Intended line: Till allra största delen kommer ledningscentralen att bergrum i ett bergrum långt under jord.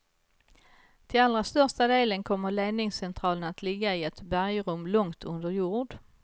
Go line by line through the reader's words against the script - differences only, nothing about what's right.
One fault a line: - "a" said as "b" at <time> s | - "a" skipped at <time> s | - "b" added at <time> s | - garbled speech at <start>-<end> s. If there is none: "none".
- "bergrum" said as "ligga" at 3.6 s